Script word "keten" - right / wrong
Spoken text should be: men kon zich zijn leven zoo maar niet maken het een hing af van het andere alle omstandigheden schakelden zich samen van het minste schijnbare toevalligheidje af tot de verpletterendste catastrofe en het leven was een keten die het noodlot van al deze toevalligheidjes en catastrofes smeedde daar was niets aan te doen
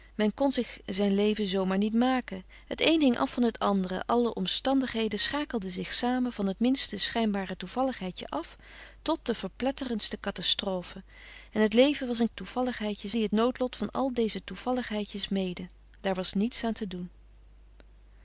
wrong